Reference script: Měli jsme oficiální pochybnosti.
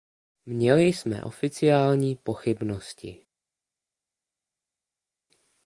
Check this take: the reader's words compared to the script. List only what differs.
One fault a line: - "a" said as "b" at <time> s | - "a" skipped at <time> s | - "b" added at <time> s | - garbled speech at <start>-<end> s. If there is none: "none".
none